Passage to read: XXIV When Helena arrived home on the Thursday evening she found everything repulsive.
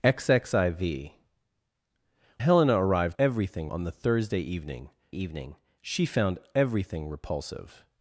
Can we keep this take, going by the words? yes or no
no